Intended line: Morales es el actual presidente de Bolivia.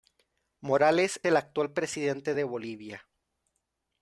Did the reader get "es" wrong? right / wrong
wrong